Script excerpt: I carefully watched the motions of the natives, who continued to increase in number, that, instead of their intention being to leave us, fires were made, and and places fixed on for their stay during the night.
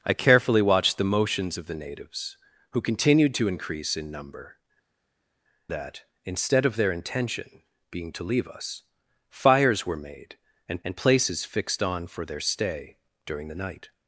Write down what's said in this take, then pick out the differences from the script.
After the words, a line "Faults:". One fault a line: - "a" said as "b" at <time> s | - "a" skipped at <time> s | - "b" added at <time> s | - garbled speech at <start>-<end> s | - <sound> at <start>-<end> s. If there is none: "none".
I carefully watched the motions of the natives, who continued to increase in number, that, instead of their intention being to leave us, fires were made, and and places fixed on for their stay during the night.
Faults:
none